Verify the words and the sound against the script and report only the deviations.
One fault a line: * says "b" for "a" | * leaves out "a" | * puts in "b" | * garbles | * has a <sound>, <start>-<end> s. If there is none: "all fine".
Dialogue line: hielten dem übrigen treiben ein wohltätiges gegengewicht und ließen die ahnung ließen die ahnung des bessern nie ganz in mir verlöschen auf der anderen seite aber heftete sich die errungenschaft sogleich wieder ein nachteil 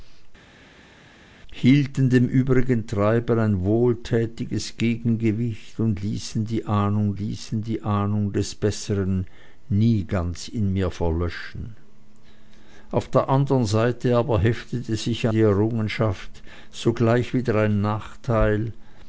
all fine